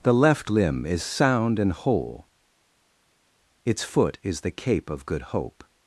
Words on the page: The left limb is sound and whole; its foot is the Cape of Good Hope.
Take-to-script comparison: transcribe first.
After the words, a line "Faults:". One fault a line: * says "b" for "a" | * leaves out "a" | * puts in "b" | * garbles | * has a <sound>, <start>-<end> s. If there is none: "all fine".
The left limb is sound and whole; its foot is the Cape of Good Hope.
Faults:
all fine